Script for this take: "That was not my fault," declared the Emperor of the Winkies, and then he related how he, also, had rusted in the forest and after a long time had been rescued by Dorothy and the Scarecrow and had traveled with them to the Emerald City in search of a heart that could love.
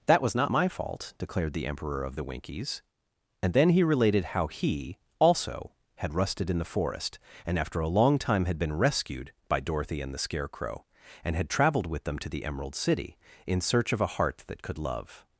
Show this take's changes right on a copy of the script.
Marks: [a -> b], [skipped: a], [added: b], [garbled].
"That was not my fault," declared the Emperor of the Winkies, and then he related how he, also, had rusted in the forest and after a long time had been rescued by Dorothy and the Scarecrow and had traveled with them to the Emerald City in search of a heart that could love.